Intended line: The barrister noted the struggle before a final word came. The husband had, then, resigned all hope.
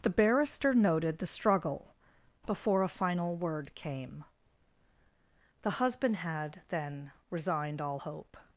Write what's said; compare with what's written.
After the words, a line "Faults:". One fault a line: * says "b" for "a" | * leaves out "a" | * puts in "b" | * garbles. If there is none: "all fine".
The barrister noted the struggle before a final word came. The husband had, then, resigned all hope.
Faults:
all fine